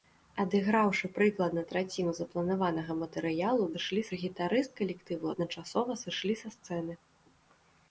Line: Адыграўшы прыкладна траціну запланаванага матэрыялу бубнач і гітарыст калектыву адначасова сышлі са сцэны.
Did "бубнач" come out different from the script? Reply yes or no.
yes